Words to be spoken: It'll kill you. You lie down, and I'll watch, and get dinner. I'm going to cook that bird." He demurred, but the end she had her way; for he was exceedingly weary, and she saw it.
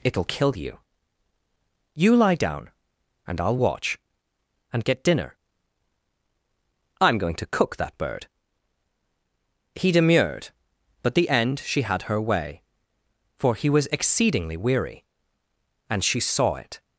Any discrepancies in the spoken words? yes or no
no